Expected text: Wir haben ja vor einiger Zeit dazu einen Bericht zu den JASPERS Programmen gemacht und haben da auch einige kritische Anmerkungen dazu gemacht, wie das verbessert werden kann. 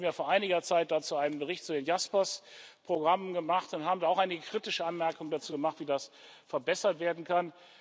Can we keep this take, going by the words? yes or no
yes